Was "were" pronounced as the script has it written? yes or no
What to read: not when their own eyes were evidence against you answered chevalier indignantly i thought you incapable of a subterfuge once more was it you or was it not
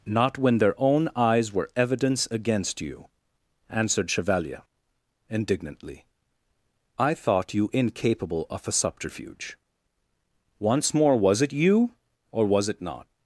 yes